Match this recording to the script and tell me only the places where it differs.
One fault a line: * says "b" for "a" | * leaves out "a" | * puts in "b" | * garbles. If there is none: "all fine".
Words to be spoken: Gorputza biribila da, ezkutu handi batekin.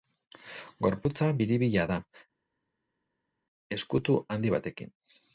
all fine